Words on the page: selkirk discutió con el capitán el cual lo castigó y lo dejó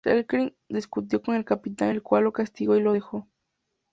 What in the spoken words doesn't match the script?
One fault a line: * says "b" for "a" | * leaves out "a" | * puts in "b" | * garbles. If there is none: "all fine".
all fine